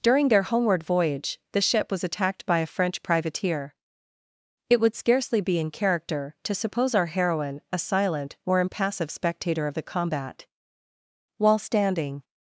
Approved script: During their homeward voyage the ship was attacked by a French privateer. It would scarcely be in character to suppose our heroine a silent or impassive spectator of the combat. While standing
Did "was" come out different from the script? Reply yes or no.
no